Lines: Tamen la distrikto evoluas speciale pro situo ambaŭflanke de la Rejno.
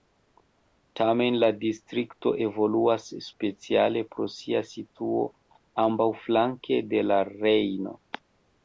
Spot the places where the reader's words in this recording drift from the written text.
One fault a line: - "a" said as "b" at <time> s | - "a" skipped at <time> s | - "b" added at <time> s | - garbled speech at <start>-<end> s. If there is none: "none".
- "sia" added at 4.4 s